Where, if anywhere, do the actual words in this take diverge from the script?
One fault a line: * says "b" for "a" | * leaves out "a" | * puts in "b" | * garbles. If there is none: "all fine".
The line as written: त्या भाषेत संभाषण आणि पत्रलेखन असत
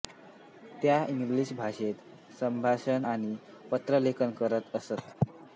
* puts in "इंग्रजी"
* puts in "करत"